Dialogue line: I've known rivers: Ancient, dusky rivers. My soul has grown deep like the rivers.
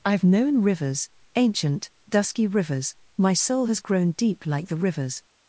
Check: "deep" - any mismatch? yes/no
no